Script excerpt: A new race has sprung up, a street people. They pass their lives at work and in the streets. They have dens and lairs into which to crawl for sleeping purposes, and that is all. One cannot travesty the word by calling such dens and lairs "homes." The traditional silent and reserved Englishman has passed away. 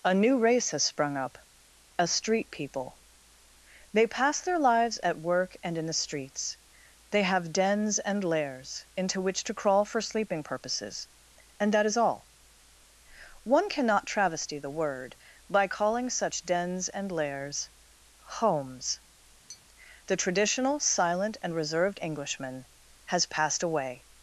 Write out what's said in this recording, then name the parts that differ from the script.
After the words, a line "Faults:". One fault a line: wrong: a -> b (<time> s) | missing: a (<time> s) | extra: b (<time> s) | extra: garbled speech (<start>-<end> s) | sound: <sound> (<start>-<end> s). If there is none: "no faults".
A new race has sprung up, a street people. They pass their lives at work and in the streets. They have dens and lairs into which to crawl for sleeping purposes, and that is all. One cannot travesty the word by calling such dens and lairs "homes." The traditional silent and reserved Englishman has passed away.
Faults:
sound: tap (19.5-19.6 s)